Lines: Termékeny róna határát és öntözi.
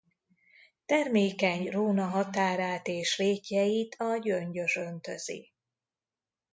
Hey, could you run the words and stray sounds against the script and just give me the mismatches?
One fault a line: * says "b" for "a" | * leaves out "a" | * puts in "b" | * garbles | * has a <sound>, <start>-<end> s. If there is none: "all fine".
* puts in "rétjeit a Gyöngyös"